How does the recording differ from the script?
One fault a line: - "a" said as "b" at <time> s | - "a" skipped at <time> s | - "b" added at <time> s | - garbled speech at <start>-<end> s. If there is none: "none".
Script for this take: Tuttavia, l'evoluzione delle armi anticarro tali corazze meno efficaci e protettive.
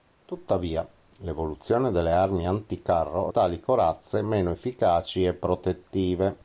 none